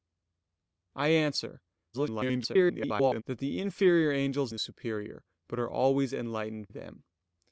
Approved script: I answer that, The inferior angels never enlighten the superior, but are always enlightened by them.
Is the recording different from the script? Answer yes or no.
yes